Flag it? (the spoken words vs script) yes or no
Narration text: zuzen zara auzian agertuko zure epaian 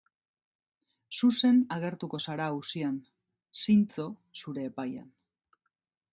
yes